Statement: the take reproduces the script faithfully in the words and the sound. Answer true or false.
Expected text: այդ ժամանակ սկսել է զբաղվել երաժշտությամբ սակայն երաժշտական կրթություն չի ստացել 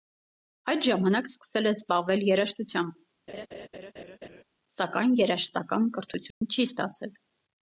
false